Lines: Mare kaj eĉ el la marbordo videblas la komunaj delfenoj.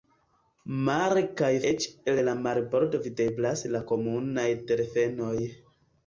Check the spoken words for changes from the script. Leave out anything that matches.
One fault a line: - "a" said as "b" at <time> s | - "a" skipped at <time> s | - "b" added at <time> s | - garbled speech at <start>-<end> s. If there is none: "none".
none